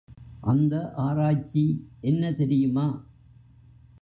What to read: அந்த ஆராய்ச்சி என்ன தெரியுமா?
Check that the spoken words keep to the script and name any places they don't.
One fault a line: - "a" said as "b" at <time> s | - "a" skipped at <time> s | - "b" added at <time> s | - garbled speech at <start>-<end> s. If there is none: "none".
none